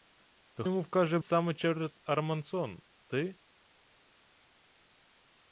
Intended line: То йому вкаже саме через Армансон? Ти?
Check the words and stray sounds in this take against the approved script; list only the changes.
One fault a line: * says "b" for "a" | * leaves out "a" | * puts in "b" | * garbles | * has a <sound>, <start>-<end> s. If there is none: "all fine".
all fine